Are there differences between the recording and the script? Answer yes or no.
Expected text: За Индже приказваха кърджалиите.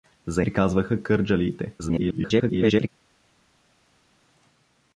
yes